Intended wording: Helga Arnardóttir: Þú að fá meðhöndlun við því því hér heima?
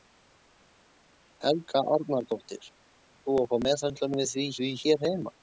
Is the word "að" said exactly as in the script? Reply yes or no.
yes